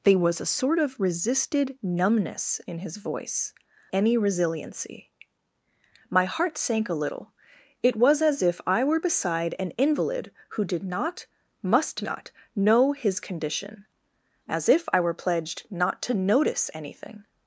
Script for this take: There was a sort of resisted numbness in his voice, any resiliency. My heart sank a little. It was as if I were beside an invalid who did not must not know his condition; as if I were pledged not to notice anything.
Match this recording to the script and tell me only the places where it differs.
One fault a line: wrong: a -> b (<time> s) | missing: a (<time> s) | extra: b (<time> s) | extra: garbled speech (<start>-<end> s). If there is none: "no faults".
no faults